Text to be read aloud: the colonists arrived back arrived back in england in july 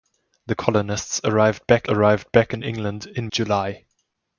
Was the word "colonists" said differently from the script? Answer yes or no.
no